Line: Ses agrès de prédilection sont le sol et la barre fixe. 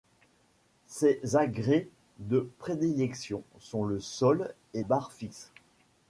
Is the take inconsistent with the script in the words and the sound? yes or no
yes